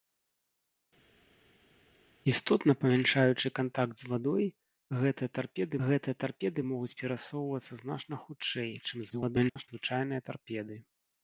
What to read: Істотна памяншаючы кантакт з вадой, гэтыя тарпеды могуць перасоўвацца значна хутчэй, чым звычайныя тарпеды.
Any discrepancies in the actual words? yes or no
yes